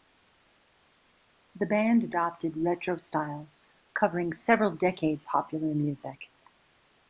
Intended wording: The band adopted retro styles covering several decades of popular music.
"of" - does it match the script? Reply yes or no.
no